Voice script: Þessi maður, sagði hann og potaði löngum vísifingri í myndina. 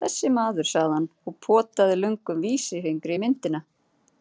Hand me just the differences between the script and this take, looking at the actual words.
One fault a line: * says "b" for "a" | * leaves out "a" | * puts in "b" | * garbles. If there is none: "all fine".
all fine